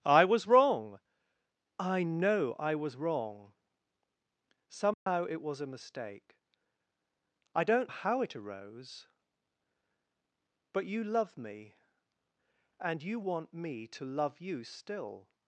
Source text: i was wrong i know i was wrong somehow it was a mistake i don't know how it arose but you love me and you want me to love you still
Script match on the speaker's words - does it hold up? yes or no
no